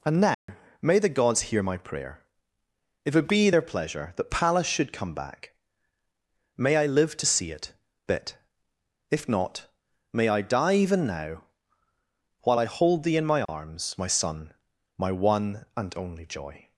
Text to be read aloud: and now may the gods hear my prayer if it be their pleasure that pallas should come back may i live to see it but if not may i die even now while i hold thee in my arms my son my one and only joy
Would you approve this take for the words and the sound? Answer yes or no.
no